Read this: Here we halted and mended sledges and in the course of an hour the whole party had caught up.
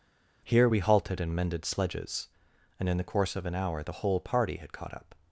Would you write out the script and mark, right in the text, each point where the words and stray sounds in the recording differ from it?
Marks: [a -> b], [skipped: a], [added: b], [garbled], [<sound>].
Here we halted and mended sledges and in the course of an hour the whole party had caught up.